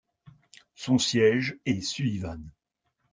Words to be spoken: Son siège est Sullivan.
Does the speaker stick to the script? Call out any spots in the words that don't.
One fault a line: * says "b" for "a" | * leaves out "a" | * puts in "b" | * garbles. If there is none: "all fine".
all fine